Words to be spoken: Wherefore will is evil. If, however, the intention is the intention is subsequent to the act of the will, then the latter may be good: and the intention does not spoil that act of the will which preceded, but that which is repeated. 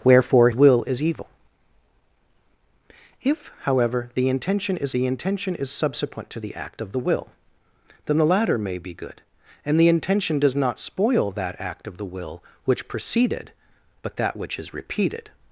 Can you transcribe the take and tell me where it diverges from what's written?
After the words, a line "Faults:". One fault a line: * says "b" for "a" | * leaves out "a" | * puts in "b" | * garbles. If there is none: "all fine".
Wherefore will is evil. If, however, the intention is the intention is subsequent to the act of the will, then the latter may be good: and the intention does not spoil that act of the will which preceded, but that which is repeated.
Faults:
all fine